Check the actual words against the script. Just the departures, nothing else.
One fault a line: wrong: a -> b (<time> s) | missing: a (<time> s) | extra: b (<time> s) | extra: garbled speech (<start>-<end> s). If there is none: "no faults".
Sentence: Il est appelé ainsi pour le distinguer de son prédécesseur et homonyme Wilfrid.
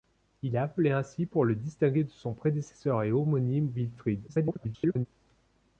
extra: garbled speech (4.3-5.1 s)